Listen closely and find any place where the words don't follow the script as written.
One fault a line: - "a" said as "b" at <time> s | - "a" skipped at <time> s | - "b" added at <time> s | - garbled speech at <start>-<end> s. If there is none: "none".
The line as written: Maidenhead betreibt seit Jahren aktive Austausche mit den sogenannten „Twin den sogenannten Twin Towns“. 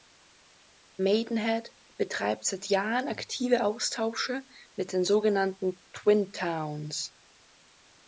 - "den sogenannten Twin" skipped at 6.3 s